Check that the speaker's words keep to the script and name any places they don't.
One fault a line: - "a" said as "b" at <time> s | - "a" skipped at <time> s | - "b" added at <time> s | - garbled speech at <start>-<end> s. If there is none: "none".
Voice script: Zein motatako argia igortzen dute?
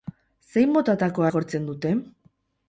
- "argia" skipped at 1.3 s